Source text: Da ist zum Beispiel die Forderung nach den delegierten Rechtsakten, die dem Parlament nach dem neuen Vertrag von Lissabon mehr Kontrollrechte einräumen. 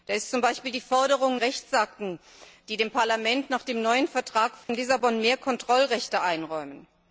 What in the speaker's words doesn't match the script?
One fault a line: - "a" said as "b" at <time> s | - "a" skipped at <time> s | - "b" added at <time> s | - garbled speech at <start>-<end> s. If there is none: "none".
- "nach den delegierten" skipped at 1.4 s